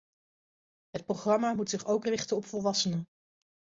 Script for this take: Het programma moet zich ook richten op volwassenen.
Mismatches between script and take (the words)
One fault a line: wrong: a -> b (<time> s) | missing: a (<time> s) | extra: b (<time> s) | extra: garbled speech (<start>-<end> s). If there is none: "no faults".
no faults